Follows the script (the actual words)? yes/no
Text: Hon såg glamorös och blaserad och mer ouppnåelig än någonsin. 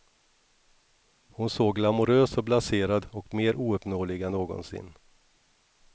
yes